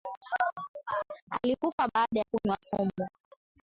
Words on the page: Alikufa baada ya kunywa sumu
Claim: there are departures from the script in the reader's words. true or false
false